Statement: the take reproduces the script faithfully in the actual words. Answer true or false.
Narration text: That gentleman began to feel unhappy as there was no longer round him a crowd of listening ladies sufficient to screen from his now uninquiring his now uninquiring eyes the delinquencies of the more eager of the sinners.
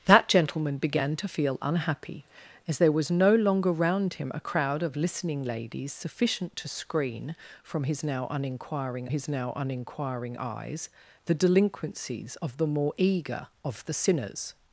true